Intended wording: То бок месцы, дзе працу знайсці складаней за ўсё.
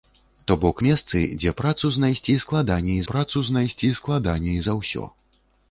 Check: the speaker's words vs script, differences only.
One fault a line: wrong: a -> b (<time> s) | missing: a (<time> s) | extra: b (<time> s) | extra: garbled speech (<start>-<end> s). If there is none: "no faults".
extra: працу знайсці складаней (3.1 s)